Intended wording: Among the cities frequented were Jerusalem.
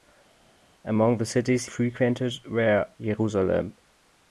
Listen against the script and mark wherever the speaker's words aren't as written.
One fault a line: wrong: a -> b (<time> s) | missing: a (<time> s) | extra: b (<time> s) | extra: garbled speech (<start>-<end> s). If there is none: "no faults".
no faults